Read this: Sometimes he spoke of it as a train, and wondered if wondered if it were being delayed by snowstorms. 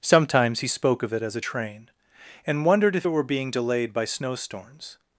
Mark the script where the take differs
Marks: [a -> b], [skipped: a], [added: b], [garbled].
Sometimes he spoke of it as a train, and wondered if [skipped: wondered if] it were being delayed by snowstorms.